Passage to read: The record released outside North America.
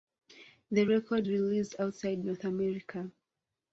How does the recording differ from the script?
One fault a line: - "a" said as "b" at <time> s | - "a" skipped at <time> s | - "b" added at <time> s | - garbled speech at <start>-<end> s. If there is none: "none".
none